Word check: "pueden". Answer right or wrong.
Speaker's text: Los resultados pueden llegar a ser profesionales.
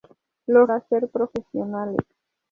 wrong